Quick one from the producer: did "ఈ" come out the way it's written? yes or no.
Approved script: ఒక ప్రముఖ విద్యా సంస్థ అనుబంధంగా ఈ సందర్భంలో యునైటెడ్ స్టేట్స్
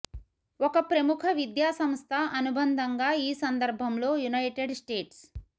yes